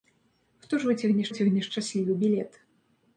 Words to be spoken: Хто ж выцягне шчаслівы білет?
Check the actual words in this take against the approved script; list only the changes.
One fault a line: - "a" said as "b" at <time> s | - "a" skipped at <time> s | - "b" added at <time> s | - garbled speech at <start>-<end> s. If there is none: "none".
- "выцягне" added at 1.3 s